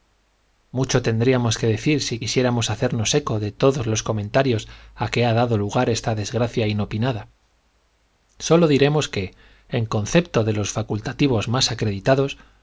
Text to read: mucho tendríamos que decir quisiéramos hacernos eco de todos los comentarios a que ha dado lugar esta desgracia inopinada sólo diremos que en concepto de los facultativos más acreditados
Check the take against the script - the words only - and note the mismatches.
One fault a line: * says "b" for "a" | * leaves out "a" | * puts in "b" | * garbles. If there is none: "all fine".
* puts in "si"